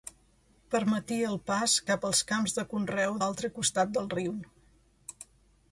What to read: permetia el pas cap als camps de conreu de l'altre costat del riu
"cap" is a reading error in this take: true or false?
false